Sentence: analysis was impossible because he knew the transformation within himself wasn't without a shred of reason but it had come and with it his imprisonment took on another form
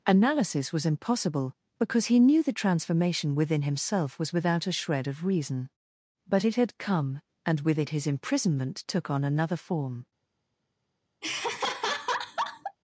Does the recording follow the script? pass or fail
fail